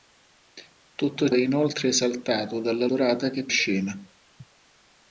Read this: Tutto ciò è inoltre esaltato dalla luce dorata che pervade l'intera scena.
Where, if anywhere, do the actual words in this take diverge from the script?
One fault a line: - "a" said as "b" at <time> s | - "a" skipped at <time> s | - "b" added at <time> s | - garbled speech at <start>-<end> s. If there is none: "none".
- "ciò" skipped at 1.3 s
- "luce" skipped at 2.9 s
- "pervade l'intera" skipped at 3.5 s